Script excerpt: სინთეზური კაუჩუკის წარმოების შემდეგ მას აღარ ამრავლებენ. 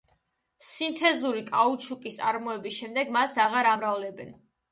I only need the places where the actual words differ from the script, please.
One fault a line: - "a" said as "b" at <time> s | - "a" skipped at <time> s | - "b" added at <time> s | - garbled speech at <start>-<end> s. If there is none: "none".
none